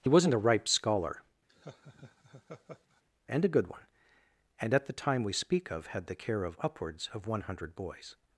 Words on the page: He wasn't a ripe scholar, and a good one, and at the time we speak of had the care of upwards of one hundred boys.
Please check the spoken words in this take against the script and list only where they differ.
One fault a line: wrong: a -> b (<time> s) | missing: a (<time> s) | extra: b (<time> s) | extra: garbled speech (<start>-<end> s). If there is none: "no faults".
no faults